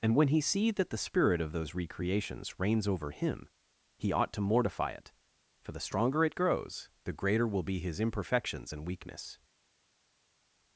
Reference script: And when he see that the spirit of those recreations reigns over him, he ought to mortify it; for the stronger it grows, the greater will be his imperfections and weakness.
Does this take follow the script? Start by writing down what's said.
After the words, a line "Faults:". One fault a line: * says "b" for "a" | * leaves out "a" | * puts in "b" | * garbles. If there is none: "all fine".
And when he see that the spirit of those recreations reigns over him, he ought to mortify it; for the stronger it grows, the greater will be his imperfections and weakness.
Faults:
all fine